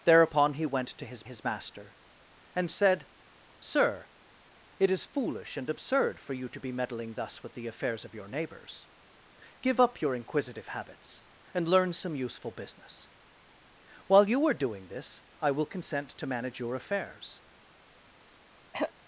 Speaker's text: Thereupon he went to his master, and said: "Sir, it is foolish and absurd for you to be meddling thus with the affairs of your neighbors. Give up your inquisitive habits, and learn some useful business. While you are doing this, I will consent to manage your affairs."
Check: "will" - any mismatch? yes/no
no